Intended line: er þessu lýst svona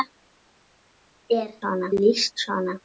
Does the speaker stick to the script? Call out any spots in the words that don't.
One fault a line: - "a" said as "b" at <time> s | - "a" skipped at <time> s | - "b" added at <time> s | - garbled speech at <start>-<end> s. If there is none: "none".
- "þessu" said as "svona" at 1.6 s